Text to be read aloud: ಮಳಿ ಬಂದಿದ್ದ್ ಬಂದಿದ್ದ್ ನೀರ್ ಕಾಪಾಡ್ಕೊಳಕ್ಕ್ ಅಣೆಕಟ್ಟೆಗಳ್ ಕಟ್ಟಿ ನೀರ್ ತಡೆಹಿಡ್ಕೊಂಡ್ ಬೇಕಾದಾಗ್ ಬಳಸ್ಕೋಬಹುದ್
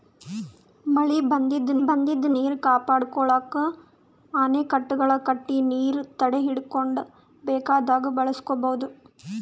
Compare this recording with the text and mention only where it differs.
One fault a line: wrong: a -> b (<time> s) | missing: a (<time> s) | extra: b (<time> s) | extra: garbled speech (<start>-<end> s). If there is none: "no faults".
no faults